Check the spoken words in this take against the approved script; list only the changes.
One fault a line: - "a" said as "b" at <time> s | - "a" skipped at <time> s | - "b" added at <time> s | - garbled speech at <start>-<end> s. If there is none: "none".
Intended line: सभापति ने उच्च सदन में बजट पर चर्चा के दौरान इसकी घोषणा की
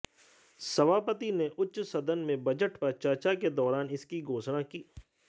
none